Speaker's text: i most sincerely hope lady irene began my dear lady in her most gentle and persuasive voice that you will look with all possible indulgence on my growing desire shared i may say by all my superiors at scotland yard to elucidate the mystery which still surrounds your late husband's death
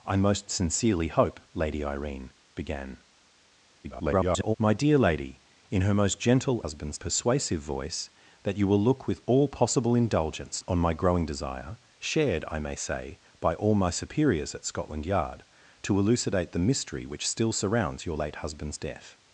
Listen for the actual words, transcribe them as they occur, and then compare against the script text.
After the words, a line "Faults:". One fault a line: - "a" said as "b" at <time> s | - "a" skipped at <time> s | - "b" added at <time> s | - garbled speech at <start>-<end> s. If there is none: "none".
i most sincerely hope lady irene began [garbled] my dear lady in her most gentle husband's persuasive voice that you will look with all possible indulgence on my growing desire shared i may say by all my superiors at scotland yard to elucidate the mystery which still surrounds your late husband's death
Faults:
- garbled speech at 3.8-4.6 s
- "and" said as "husband's" at 6.6 s